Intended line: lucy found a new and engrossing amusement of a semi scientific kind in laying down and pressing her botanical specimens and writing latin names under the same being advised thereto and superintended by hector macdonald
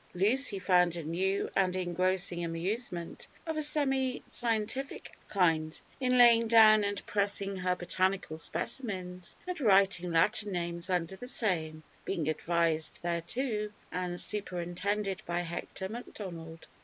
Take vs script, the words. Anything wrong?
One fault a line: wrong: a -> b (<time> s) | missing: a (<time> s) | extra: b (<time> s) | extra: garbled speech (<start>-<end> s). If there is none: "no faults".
no faults